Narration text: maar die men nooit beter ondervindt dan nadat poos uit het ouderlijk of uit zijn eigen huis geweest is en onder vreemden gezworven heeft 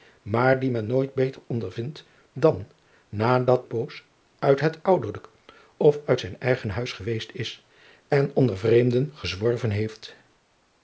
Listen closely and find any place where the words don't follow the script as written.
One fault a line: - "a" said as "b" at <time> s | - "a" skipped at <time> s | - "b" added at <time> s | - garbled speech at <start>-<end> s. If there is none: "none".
none